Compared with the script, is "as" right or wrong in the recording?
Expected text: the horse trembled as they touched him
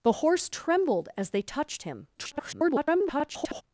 right